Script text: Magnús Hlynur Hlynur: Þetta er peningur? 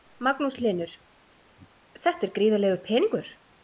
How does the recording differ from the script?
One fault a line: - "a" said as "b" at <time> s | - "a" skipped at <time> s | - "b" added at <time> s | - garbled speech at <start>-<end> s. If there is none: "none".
- "Hlynur" skipped at 0.9 s
- "gríðarlegur" added at 2.4 s